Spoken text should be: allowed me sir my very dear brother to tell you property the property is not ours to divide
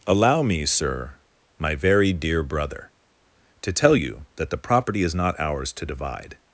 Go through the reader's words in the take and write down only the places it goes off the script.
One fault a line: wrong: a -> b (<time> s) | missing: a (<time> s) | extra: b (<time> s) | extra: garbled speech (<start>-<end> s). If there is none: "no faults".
wrong: allowed -> allow (0.1 s)
wrong: property -> that (4.4 s)